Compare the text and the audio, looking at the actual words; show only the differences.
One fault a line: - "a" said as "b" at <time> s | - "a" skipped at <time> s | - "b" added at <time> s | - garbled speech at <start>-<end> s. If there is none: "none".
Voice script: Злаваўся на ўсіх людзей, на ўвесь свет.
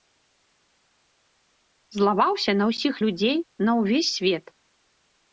none